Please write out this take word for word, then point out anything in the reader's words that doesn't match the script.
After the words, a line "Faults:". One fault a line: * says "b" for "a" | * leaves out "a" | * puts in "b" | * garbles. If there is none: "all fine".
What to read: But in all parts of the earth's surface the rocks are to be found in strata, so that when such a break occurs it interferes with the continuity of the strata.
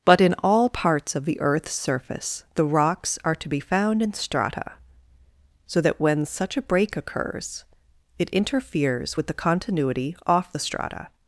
But in all parts of the earth's surface the rocks are to be found in strata, so that when such a break occurs it interferes with the continuity off the strata.
Faults:
* says "off" for "of"